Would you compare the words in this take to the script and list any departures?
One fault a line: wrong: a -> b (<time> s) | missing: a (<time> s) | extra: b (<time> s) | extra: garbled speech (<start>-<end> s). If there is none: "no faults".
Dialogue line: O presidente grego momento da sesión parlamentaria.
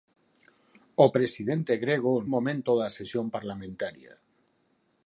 no faults